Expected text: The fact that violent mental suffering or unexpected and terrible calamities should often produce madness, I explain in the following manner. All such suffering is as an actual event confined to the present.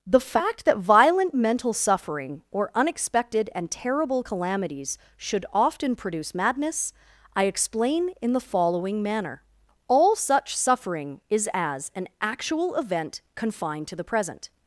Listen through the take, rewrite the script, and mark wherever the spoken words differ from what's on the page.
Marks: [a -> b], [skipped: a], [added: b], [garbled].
The fact that violent mental suffering or unexpected and terrible calamities should often produce madness, I explain in the following manner. All such suffering is as an actual event confined to the present.